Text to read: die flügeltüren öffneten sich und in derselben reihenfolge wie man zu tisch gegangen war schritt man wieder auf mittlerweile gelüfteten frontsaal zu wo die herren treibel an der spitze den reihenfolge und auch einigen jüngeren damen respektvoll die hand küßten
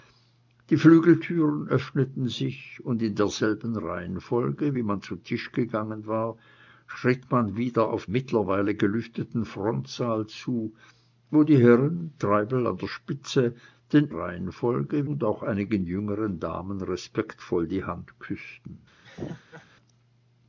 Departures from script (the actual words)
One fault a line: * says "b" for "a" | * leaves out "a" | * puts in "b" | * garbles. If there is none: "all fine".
all fine